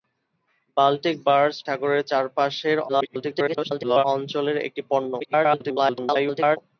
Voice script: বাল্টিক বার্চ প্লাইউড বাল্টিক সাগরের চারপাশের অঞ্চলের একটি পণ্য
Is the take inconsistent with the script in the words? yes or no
yes